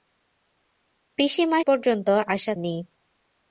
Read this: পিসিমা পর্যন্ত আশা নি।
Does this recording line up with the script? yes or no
yes